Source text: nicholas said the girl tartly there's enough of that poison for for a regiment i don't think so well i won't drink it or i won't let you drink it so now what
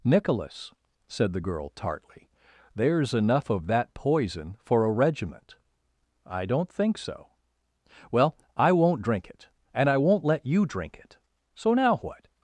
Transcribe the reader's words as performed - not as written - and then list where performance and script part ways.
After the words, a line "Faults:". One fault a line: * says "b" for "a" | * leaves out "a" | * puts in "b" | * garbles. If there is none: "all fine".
nicholas said the girl tartly there's enough of that poison for a regiment i don't think so well i won't drink it and i won't let you drink it so now what
Faults:
* leaves out "for"
* says "and" for "or"